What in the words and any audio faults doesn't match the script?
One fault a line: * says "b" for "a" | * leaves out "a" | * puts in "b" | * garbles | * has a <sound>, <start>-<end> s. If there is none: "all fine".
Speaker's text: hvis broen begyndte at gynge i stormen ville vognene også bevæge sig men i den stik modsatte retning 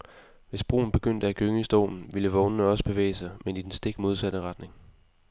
all fine